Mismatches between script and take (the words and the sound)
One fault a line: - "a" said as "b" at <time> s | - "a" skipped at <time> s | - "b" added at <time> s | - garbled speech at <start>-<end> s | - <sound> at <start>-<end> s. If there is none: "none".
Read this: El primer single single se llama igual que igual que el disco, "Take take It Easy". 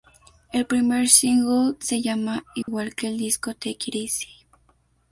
- "single" skipped at 1.8 s
- dropout at 2.6-2.7 s
- "igual que" skipped at 3.1 s
- "take" skipped at 3.9 s